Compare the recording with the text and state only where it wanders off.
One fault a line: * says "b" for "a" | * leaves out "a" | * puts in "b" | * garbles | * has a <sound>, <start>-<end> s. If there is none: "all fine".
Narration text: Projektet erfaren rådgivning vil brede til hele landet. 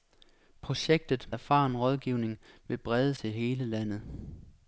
all fine